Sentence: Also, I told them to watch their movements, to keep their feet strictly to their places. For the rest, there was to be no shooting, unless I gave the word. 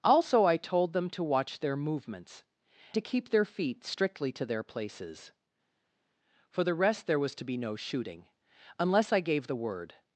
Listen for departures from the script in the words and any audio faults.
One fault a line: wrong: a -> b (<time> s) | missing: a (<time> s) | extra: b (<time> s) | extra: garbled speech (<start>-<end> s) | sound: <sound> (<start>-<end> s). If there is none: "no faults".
no faults